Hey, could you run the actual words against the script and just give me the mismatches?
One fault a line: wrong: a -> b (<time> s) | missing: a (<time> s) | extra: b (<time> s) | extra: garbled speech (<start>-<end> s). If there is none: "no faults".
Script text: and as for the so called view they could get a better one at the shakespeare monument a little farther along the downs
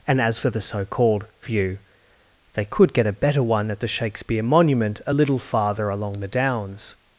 no faults